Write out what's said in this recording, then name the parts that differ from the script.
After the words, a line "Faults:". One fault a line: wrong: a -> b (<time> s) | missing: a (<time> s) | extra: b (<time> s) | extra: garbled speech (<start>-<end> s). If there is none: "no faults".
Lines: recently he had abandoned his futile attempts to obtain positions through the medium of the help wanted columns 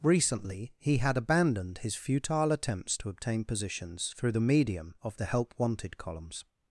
recently he had abandoned his futile attempts to obtain positions through the medium of the help wanted columns
Faults:
no faults